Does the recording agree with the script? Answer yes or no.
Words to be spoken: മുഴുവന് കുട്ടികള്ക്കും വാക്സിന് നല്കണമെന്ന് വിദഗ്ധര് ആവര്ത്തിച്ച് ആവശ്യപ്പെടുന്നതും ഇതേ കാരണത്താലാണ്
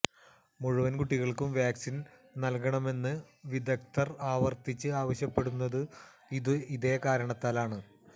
yes